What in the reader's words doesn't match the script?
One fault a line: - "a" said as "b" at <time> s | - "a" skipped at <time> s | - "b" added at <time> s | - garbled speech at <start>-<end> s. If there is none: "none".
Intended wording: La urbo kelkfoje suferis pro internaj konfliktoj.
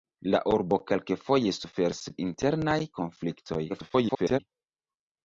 - "pro" skipped at 2.0 s
- garbled speech at 3.7-4.4 s